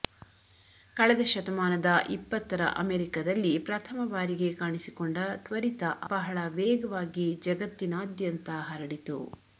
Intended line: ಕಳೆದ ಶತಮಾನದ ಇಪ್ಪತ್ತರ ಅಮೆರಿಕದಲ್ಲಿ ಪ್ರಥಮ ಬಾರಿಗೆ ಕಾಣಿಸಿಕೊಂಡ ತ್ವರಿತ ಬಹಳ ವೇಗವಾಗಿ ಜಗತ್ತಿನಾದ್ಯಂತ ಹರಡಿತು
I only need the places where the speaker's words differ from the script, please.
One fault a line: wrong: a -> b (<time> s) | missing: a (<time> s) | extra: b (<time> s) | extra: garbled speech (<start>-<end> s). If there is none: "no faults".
no faults